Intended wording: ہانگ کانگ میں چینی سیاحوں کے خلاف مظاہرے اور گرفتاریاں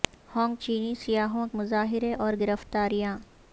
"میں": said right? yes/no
no